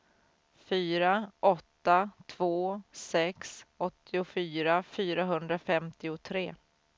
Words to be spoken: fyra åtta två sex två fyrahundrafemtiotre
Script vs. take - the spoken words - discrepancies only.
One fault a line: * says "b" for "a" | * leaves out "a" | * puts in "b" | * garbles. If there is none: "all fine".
* says "åttiofyra" for "två"